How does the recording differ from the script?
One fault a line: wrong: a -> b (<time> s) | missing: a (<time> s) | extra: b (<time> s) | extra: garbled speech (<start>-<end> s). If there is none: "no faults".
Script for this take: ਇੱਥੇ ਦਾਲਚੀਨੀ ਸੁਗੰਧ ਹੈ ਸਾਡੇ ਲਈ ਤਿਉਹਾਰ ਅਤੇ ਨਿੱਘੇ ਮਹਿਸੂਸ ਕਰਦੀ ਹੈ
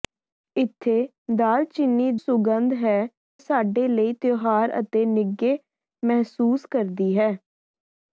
no faults